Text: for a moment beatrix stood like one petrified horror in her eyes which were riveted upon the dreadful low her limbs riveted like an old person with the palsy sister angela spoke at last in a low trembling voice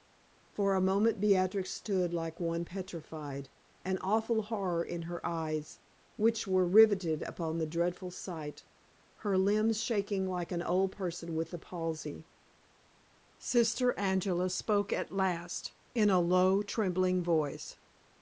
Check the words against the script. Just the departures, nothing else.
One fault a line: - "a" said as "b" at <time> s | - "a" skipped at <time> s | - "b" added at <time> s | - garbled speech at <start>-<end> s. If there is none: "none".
- "an awful" added at 3.8 s
- "low" said as "sight" at 8.1 s
- "riveted" said as "shaking" at 9.8 s